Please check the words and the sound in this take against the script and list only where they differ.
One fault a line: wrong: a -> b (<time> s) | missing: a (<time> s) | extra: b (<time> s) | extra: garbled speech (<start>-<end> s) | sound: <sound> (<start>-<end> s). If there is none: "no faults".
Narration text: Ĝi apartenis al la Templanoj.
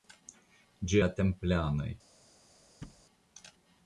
missing: apartenis al (1.0 s)
sound: thud (2.8-3.0 s)